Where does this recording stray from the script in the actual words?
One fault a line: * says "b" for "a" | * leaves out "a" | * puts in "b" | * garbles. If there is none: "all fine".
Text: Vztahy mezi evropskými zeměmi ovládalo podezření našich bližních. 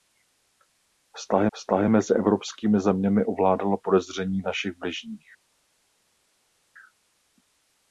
* puts in "vztahy"